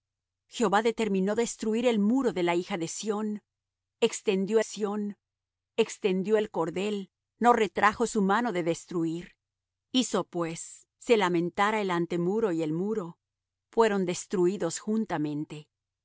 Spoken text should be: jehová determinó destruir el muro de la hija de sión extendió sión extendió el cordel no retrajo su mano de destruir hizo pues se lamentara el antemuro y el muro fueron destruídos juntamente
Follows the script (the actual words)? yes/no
yes